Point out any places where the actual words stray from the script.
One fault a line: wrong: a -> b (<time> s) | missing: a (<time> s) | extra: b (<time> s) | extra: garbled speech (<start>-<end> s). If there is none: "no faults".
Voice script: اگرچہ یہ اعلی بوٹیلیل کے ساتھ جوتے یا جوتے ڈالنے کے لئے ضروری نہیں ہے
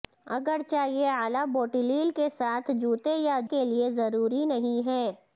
missing: جوتے ڈالنے (3.4 s)